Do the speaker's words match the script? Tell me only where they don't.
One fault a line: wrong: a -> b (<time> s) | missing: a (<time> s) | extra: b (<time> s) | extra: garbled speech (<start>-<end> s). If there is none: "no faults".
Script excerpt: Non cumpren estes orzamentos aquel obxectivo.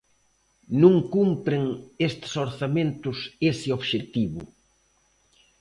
wrong: aquel -> ese (3.5 s)